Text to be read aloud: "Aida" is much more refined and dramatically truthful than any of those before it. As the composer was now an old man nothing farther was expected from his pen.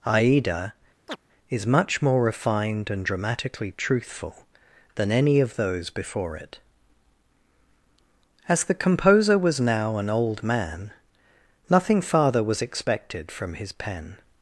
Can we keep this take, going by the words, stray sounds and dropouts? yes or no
no